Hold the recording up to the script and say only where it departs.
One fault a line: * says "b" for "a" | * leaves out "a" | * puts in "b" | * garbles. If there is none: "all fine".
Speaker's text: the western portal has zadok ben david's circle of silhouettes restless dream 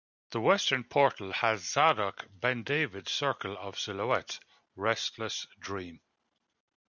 all fine